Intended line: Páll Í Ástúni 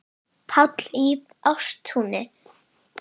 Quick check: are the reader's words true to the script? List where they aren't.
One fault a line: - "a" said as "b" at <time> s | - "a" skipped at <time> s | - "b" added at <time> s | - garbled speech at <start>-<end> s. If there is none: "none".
none